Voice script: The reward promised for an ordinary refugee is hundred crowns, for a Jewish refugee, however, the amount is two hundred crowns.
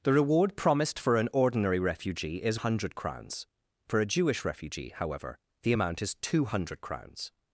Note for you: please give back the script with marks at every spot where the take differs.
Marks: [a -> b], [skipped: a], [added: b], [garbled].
The reward promised for an ordinary refugee is hundred crowns, for a Jewish refugee, however, the amount is two hundred crowns.